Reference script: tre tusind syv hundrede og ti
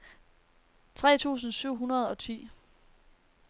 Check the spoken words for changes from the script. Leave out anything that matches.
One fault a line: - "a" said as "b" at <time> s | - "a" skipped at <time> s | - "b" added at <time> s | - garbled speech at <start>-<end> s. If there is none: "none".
none